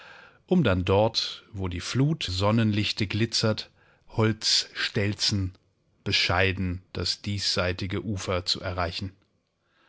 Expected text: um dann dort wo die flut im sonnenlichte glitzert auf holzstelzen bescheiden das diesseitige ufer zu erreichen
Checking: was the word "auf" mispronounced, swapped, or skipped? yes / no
yes